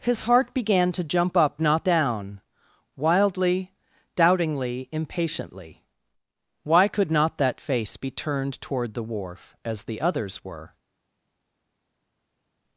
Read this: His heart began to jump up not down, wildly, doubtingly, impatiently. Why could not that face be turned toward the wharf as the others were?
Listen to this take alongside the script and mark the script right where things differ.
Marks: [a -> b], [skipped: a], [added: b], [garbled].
His heart began to jump up not down, wildly, doubtingly, impatiently. Why could not that face be turned toward the wharf as the others were?